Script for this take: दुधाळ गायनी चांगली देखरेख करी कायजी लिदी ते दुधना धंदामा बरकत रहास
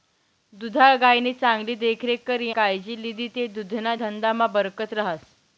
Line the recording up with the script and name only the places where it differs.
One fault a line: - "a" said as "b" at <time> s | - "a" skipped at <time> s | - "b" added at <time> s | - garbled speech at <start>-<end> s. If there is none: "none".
none